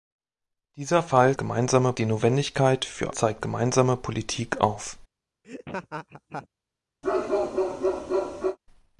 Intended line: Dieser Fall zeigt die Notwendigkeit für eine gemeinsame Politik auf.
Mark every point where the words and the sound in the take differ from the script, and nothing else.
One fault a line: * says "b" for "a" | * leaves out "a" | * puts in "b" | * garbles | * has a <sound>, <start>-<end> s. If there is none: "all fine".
* says "gemeinsame" for "zeigt"
* says "zeigt" for "eine"
* has a laugh, 5.4-6.5 s
* has a bark, 7.0-8.6 s